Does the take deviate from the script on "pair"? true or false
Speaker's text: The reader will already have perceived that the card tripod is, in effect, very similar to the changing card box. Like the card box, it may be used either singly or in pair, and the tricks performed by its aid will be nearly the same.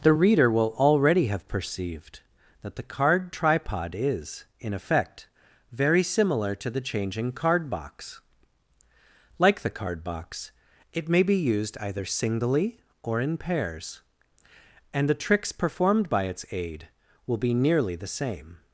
true